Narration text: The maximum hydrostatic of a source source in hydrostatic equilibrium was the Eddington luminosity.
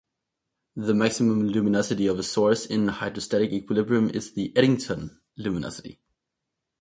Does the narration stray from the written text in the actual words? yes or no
yes